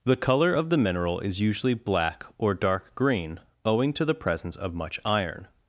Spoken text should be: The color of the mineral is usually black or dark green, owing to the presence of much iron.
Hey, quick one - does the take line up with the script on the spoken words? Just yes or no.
yes